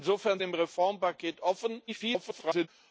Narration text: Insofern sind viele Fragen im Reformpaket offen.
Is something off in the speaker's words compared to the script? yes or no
yes